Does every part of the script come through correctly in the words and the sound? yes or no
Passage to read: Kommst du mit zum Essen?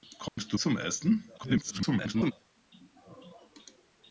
no